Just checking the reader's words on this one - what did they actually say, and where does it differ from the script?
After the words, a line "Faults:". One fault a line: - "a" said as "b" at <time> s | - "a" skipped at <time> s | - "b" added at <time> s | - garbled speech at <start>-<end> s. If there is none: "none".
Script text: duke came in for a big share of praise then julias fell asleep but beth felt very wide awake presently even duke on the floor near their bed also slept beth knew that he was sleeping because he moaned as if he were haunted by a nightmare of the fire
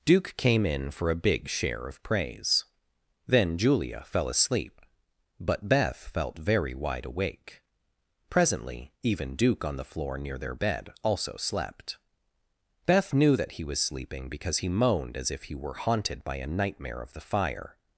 duke came in for a big share of praise then julia fell asleep but beth felt very wide awake presently even duke on the floor near their bed also slept beth knew that he was sleeping because he moaned as if he were haunted by a nightmare of the fire
Faults:
- "julias" said as "julia" at 3.6 s